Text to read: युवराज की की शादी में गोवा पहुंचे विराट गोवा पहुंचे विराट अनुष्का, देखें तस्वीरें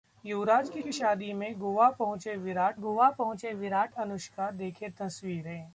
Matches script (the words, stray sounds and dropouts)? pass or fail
pass